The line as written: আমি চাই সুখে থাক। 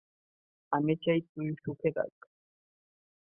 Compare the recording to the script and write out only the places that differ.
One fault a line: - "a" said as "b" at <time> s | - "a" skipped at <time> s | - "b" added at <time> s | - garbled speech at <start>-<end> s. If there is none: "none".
- "তুই" added at 1.3 s